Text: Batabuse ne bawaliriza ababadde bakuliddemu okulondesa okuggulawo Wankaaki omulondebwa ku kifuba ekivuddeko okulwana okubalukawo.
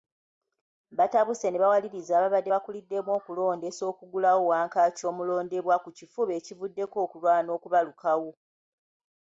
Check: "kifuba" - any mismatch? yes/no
no